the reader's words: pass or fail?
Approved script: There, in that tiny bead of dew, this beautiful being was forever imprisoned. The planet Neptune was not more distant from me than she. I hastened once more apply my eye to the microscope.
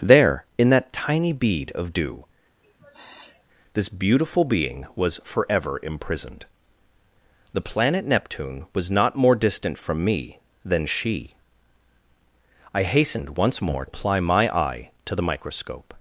pass